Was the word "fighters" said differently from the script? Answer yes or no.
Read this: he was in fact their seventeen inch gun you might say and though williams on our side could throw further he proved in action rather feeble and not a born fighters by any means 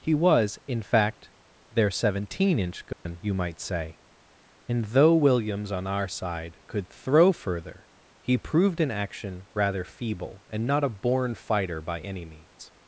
yes